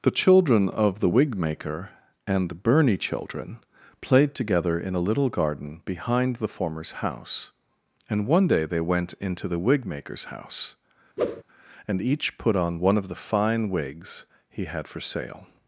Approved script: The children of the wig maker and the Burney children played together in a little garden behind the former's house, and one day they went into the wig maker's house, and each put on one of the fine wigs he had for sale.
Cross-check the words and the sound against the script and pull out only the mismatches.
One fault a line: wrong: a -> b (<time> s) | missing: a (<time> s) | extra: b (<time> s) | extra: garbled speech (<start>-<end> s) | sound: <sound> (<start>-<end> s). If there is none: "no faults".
sound: whoosh (11.2-11.4 s)